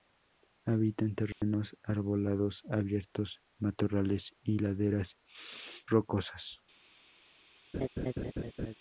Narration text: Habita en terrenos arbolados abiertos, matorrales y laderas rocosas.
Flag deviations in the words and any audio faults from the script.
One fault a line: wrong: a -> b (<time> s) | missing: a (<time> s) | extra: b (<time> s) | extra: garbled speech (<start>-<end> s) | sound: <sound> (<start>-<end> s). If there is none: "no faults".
sound: dropout (1.3-1.4 s)
sound: laugh (7.7-8.7 s)